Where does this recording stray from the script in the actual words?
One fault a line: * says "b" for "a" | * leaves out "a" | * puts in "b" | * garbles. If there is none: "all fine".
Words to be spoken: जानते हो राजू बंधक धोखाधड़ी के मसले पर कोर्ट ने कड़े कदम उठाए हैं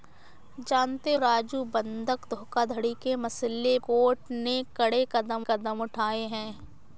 * leaves out "हो"
* leaves out "पर"
* puts in "कदम"